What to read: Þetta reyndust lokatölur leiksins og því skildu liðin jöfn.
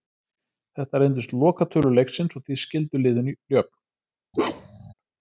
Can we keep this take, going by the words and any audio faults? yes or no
no